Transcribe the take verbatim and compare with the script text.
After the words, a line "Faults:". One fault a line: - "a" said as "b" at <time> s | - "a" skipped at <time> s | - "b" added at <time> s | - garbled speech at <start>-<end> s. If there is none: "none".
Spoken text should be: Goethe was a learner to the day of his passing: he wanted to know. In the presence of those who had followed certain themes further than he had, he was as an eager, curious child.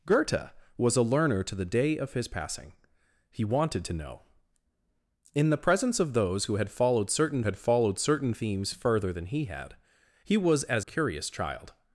Goethe was a learner to the day of his passing: he wanted to know. In the presence of those who had followed certain had followed certain themes further than he had, he was as curious child.
Faults:
- "had followed certain" added at 7.4 s
- "an eager" skipped at 10.9 s